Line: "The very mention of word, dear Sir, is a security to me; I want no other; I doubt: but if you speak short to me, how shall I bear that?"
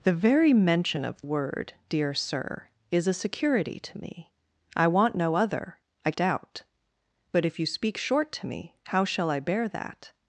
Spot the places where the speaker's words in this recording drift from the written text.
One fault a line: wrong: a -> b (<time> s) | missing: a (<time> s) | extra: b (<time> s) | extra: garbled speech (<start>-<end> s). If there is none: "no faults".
no faults